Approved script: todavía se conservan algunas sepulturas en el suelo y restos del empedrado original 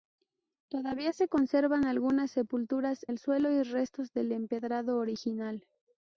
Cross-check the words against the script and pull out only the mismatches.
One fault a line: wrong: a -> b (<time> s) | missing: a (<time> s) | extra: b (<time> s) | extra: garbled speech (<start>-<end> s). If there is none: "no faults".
missing: en (3.0 s)